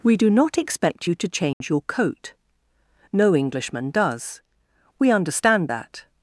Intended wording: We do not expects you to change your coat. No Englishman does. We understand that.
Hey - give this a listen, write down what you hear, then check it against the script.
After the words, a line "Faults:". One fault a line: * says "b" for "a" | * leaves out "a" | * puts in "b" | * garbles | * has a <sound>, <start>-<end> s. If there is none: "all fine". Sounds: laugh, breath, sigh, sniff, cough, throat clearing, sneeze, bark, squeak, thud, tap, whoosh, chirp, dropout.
We do not expect you to change your coat. No Englishman does. We understand that.
Faults:
* says "expect" for "expects"
* has a dropout, 1.5-1.6 s